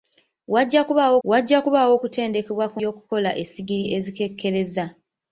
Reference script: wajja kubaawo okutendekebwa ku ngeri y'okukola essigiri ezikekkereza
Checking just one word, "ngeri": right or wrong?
wrong